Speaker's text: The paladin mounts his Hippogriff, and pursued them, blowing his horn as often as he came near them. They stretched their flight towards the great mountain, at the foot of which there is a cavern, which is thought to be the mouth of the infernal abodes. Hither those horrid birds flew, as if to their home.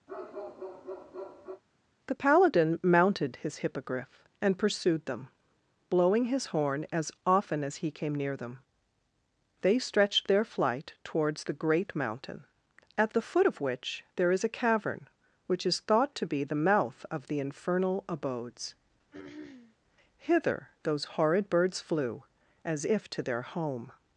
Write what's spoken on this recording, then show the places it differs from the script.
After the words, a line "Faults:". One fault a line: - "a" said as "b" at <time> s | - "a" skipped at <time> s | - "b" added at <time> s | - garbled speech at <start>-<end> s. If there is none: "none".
The paladin mounted his Hippogriff, and pursued them, blowing his horn as often as he came near them. They stretched their flight towards the great mountain, at the foot of which there is a cavern, which is thought to be the mouth of the infernal abodes. Hither those horrid birds flew, as if to their home.
Faults:
- "mounts" said as "mounted" at 2.8 s